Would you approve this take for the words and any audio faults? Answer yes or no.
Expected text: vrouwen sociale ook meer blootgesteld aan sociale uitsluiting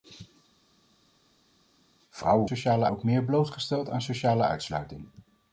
yes